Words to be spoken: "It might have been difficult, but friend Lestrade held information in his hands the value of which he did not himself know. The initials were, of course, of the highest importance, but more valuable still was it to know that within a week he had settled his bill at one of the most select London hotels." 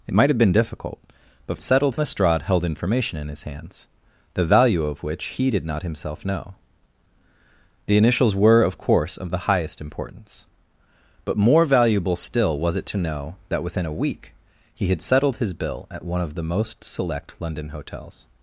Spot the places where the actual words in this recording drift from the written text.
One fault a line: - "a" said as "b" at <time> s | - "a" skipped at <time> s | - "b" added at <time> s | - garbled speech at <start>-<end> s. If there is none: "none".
- "friend" said as "settled" at 1.6 s